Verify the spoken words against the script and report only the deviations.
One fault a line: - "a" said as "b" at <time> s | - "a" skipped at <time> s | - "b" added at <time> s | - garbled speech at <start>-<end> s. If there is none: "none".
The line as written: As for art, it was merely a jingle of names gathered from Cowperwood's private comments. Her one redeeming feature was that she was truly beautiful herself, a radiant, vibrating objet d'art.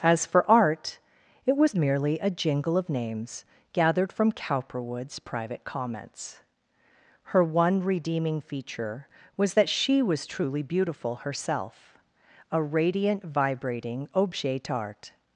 none